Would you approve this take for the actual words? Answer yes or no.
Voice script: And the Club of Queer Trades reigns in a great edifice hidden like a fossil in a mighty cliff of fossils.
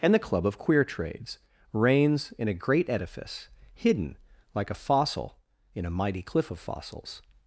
yes